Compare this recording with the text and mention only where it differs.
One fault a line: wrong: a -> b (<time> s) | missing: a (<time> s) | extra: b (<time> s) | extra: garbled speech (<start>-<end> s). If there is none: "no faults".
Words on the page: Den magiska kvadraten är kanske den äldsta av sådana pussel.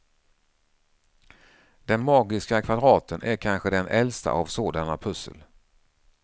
no faults